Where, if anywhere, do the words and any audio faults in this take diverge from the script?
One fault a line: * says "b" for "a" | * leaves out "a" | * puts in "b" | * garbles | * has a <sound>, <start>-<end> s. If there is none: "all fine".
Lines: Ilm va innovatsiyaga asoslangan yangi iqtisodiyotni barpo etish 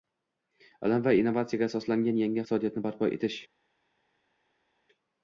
all fine